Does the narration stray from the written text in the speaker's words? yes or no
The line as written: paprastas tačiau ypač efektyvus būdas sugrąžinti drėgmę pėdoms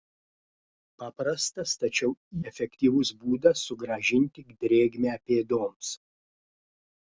yes